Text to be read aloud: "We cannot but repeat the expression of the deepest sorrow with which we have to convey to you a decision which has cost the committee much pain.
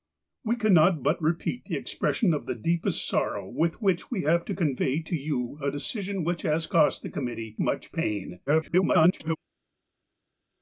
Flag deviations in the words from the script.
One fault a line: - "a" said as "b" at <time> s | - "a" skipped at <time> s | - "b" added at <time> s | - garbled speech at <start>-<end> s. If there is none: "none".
- garbled speech at 8.5-9.4 s